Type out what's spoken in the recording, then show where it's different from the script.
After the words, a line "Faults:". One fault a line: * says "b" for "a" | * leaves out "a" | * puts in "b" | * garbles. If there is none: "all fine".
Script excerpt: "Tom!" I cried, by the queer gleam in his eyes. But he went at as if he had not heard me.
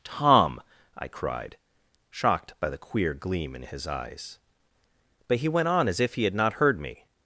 "Tom!" I cried, shocked by the queer gleam in his eyes. But he went on as if he had not heard me.
Faults:
* puts in "shocked"
* says "on" for "at"